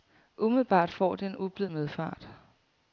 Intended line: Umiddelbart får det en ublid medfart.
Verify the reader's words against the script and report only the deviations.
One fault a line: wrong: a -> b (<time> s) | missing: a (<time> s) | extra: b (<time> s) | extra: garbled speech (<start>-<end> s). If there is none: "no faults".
no faults